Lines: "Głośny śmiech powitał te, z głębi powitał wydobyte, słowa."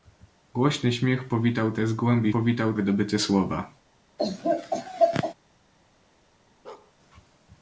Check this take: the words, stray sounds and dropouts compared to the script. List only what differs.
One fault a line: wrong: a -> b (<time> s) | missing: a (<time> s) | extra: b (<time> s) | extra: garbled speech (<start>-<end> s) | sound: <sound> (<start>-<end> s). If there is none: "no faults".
sound: laugh (4.2-5.3 s)
sound: bark (6.6-6.9 s)